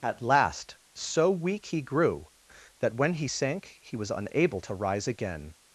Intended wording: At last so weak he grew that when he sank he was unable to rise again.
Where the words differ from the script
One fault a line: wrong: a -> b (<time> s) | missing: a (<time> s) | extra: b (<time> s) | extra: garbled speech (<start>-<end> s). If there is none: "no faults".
no faults